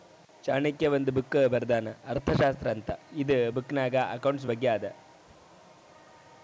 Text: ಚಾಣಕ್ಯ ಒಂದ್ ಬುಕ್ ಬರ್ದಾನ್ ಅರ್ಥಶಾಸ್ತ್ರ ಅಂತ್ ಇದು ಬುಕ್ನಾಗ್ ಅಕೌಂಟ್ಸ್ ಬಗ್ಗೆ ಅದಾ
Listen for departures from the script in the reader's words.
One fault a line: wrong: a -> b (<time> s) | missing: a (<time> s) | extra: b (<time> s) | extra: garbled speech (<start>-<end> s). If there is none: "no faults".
no faults